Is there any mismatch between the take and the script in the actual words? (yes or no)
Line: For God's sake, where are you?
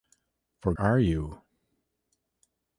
yes